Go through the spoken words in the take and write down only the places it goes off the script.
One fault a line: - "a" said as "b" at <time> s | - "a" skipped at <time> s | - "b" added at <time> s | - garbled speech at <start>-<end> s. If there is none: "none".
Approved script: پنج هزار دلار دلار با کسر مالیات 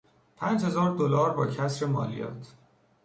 - "دلار" skipped at 1.3 s